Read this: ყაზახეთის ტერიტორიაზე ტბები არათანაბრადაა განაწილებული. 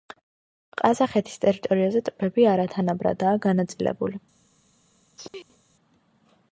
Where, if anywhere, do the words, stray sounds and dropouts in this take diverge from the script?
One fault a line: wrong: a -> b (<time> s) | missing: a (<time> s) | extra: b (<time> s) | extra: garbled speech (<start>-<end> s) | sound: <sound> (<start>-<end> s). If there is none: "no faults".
sound: sneeze (5.2-5.6 s)